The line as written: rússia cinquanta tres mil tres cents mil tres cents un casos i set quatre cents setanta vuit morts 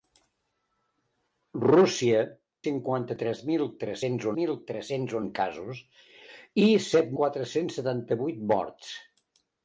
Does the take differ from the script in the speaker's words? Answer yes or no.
no